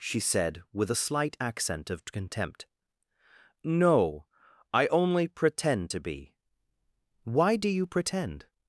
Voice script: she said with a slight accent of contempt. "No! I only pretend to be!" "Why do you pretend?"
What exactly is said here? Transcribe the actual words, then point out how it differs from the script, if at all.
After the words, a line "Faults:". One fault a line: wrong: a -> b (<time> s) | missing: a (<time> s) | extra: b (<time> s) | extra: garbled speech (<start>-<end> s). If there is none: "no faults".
she said with a slight accent of contempt. "No! I only pretend to be!" "Why do you pretend?"
Faults:
no faults